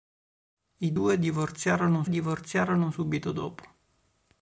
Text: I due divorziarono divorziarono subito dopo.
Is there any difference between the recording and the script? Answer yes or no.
no